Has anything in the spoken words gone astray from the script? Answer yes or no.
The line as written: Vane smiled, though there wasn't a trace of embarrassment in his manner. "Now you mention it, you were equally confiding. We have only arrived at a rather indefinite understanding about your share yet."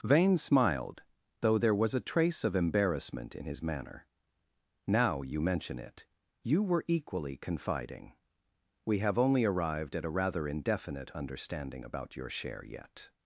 yes